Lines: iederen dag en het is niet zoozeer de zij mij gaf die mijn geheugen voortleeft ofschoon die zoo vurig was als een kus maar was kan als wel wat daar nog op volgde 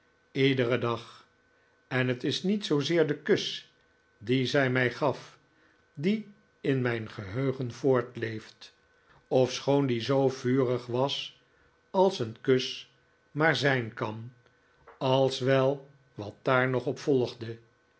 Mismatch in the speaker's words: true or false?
true